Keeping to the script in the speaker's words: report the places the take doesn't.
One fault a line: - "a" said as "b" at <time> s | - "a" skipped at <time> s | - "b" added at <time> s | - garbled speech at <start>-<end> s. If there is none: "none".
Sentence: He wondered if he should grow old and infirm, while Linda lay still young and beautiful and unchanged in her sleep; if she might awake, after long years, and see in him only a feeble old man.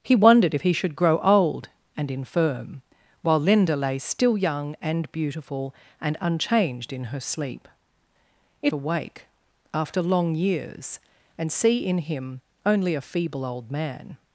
- "she might" skipped at 8.7 s